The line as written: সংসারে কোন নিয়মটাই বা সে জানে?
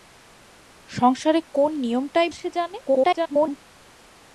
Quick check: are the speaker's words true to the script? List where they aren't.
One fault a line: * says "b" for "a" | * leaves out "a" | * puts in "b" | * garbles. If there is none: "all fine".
* leaves out "বা"
* garbles